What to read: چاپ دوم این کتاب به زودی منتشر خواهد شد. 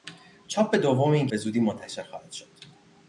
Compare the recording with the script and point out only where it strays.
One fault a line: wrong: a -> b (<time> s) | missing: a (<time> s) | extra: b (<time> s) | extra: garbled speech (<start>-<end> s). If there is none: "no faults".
missing: کتاب (1.3 s)